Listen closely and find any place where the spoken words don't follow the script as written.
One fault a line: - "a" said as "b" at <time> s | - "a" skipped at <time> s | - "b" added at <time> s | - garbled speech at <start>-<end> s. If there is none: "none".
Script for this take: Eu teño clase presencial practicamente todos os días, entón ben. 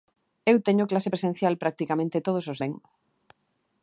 - "días entón" skipped at 2.6 s